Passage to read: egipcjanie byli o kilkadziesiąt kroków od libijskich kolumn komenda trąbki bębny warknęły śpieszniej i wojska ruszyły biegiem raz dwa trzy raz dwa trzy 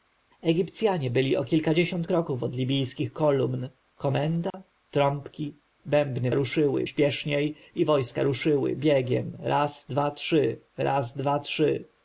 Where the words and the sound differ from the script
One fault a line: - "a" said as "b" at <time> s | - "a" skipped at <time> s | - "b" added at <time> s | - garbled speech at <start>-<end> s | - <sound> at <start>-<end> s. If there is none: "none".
- dropout at 4.5-4.5 s
- "warknęły" said as "ruszyły" at 6.3 s